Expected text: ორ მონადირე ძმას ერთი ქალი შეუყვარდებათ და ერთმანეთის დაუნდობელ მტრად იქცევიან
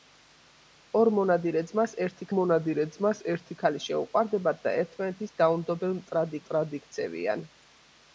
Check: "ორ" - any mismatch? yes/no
no